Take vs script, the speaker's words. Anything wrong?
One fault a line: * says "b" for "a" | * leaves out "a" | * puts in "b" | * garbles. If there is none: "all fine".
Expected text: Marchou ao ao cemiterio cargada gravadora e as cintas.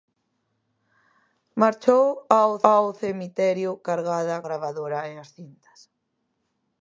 all fine